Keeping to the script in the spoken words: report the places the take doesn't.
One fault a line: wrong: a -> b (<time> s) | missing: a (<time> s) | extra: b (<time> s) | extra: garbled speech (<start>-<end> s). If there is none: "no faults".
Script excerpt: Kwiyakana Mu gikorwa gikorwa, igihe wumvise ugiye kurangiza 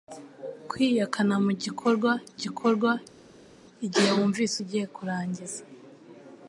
no faults